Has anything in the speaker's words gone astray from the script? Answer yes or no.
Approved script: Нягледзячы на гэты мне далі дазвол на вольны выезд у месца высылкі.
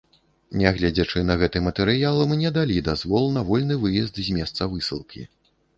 yes